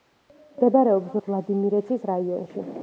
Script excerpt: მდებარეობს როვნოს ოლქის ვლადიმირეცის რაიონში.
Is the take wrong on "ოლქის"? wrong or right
wrong